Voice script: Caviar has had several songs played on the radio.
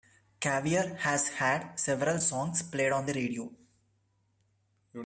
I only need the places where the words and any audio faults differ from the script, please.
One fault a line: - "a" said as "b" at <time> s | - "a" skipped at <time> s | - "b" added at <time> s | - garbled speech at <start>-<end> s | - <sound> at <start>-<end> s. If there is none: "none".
none